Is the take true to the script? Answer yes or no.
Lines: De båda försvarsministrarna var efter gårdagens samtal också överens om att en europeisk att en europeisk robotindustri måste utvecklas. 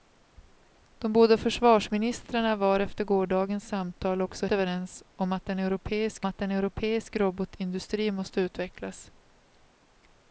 yes